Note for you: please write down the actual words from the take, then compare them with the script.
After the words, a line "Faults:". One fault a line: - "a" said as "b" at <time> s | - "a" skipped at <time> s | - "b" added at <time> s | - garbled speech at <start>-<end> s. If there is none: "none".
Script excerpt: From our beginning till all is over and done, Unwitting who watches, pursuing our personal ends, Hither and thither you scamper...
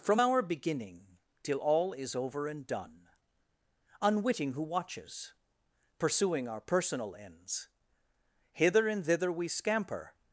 From our beginning till all is over and done, Unwitting who watches, pursuing our personal ends, Hither and thither we scamper...
Faults:
- "you" said as "we" at 9.3 s